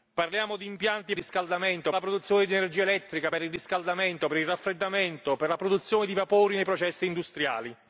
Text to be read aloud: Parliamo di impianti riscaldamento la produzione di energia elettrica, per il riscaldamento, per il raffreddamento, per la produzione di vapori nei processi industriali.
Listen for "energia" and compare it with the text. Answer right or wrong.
right